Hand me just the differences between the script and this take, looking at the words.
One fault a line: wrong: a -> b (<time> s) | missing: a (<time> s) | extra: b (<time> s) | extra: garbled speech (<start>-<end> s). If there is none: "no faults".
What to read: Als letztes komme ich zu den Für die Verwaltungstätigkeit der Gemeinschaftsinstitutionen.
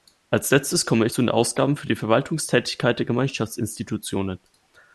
extra: Ausgaben (1.3 s)